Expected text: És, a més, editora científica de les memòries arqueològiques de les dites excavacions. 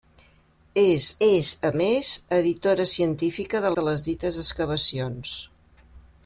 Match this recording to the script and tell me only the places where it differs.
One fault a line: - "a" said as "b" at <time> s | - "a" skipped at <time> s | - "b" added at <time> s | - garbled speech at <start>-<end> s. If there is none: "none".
- "és" added at 1.3 s
- "les memòries arqueològiques" skipped at 3.7 s